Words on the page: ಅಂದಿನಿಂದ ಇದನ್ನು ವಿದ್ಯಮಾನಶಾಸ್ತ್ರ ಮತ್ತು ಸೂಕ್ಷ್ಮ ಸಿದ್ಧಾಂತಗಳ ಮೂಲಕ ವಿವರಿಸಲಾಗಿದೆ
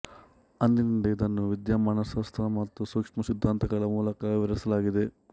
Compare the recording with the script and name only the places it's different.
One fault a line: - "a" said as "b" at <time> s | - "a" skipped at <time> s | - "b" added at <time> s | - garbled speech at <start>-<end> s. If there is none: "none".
none